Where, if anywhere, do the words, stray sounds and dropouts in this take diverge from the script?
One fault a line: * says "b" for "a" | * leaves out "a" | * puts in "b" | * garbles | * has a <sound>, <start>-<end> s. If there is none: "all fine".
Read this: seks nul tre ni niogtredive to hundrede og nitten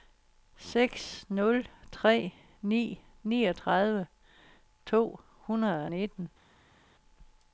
all fine